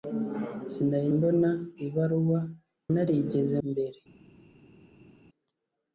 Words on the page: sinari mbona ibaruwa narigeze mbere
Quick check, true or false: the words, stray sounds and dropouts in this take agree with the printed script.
true